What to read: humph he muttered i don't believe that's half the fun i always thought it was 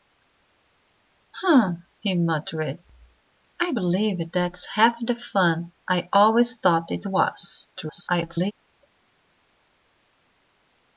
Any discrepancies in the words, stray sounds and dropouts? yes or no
yes